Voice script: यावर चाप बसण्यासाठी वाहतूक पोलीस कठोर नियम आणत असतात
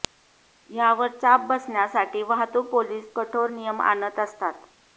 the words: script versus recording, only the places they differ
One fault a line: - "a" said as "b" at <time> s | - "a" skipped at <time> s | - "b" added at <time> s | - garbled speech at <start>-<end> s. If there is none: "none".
none